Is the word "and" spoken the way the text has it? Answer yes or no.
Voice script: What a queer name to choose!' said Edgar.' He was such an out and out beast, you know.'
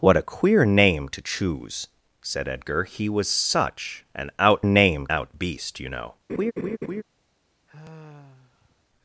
no